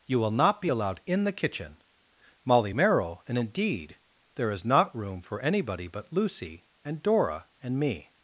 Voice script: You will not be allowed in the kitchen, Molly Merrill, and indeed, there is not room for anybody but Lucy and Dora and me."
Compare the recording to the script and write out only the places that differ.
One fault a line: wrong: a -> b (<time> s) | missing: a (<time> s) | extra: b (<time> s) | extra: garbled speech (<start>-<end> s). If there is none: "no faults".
no faults